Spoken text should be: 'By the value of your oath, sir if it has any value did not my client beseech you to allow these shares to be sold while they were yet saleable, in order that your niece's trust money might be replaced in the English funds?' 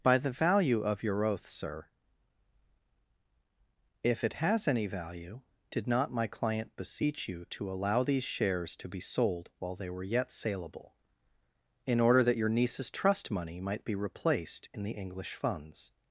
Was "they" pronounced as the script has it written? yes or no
yes